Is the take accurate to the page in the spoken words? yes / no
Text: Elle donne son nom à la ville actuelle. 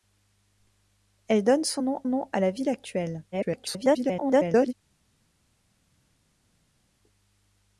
no